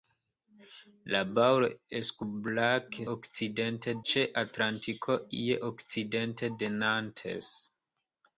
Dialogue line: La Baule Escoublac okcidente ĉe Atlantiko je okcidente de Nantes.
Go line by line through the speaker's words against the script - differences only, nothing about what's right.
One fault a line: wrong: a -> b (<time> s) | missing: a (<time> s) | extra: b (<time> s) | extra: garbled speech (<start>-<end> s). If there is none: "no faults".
no faults